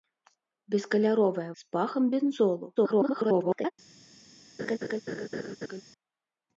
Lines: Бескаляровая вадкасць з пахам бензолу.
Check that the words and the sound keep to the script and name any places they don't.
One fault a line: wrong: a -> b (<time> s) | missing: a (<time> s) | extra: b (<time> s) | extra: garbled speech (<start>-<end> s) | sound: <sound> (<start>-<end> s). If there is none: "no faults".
missing: вадкасць (1.4 s)
extra: garbled speech (2.8-3.7 s)
sound: laugh (4.6-5.8 s)